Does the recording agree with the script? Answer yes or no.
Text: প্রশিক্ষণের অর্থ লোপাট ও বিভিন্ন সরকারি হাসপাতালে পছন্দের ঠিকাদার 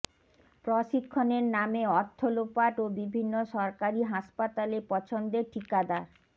no